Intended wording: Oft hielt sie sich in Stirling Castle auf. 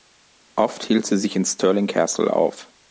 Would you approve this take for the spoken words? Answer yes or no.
yes